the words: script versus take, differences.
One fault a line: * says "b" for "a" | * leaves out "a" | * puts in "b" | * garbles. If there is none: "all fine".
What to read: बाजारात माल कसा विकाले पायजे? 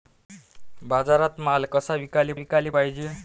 * puts in "विकाले"